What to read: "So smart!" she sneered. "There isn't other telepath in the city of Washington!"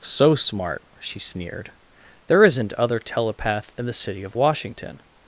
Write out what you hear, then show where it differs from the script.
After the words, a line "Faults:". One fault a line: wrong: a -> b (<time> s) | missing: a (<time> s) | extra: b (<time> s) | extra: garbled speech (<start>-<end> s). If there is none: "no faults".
"So smart!" she sneered. "There isn't other telepath in the city of Washington!"
Faults:
no faults